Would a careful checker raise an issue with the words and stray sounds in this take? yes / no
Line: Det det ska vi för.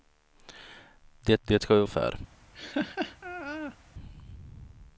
yes